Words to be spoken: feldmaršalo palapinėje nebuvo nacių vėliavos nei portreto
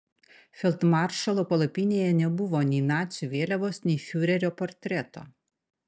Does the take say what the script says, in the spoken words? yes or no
no